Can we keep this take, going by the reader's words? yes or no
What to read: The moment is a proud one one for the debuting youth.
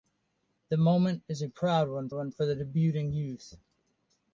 yes